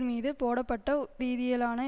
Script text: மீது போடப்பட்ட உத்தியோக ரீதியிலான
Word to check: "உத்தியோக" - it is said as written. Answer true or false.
false